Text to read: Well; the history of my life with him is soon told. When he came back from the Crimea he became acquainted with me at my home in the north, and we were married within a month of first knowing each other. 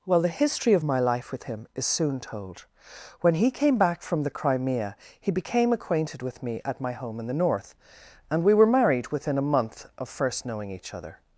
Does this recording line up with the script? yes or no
yes